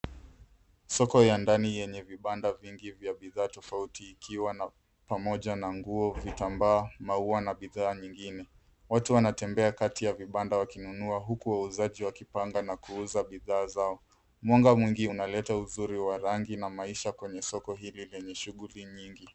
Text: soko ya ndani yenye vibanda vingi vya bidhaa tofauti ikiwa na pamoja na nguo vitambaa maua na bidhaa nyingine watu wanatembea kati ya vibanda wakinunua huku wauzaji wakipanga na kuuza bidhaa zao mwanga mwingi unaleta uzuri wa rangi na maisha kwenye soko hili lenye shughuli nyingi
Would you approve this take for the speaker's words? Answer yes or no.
yes